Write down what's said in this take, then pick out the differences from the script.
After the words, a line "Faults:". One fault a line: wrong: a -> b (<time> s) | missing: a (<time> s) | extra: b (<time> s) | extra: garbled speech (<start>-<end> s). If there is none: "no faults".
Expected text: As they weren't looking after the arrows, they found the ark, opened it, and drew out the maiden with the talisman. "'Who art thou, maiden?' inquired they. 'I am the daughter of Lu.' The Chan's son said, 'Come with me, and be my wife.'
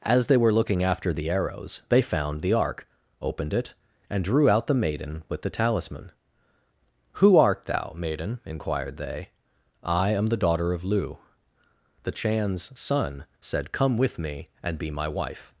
As they were looking after the arrows, they found the ark, opened it, and drew out the maiden with the talisman. "'Who art thou, maiden?' inquired they. 'I am the daughter of Lu.' The Chan's son said, 'Come with me, and be my wife.'
Faults:
wrong: weren't -> were (0.4 s)